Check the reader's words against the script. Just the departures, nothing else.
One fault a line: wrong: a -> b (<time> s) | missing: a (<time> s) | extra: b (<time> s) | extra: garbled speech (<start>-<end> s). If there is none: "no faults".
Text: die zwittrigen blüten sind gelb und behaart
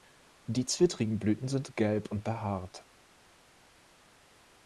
no faults